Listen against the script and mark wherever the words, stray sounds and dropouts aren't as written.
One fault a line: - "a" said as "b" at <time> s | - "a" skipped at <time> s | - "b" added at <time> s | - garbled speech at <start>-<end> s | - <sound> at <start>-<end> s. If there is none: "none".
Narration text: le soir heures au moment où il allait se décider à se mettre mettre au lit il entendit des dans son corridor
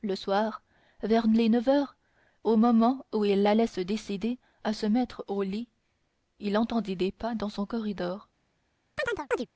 - "vers les neuf" added at 1.0 s
- "mettre" skipped at 5.2 s
- "pas" added at 7.1 s
- chirp at 9.0-9.5 s